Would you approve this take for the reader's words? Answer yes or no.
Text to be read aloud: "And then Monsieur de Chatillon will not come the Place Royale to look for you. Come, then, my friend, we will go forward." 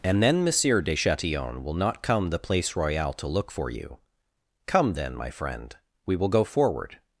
yes